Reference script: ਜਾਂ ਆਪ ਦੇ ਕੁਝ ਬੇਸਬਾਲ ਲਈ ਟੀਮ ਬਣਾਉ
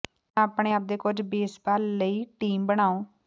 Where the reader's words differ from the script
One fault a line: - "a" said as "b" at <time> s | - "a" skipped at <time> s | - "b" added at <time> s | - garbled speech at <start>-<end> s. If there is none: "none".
- "ਆਪਣੇ" added at 0.4 s